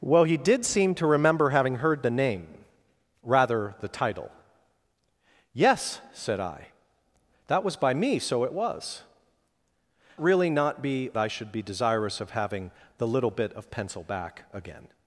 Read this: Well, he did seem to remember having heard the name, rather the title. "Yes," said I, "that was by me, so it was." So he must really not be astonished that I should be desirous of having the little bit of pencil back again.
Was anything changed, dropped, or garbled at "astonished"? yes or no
yes